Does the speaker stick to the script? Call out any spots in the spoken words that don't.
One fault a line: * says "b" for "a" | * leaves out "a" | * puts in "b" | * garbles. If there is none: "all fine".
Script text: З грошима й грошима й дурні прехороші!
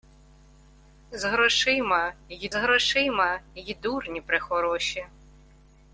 all fine